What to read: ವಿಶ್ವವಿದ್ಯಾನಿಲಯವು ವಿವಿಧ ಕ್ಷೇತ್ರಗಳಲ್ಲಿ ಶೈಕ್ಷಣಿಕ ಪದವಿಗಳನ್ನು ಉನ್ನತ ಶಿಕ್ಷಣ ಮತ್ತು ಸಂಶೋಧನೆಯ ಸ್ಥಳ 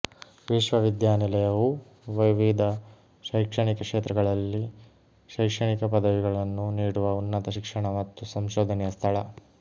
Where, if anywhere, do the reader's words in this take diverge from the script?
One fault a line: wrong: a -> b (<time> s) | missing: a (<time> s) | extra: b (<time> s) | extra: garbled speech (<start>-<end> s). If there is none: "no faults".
extra: ಶೈಕ್ಷಣಿಕ (3.2 s)
extra: ನೀಡುವ (6.8 s)